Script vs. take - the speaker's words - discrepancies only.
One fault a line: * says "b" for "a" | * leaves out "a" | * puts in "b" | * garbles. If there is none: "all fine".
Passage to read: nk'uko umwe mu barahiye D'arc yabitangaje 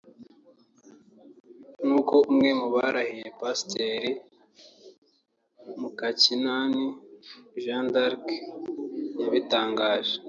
* puts in "Pasiteri Mukakinani Jeanne"